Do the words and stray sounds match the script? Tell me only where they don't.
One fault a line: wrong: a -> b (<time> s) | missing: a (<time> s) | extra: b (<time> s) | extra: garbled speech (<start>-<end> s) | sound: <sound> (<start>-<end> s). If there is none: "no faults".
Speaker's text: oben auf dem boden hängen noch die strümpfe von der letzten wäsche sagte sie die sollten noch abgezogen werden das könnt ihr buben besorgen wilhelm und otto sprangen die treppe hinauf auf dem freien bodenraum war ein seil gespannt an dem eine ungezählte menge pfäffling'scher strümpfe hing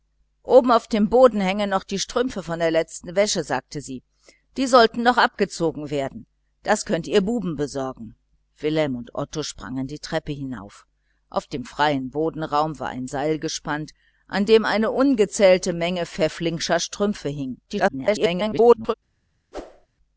extra: garbled speech (17.7-18.9 s)
sound: whoosh (19.5-19.9 s)